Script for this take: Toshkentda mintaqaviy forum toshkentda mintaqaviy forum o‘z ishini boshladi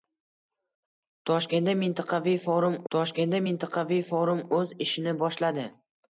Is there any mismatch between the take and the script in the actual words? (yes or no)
no